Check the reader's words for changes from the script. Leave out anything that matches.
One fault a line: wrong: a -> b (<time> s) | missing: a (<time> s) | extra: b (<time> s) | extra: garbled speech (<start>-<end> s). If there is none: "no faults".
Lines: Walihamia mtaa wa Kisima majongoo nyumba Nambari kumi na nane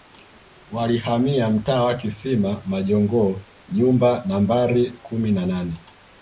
no faults